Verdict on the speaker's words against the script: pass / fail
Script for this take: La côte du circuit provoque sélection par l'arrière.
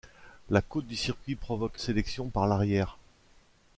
pass